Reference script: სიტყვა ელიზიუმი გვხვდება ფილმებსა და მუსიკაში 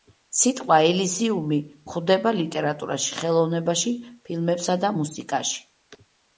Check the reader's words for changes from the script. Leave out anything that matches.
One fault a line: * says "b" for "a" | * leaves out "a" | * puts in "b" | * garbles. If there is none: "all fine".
* puts in "ლიტერატურაში ხელოვნებაში"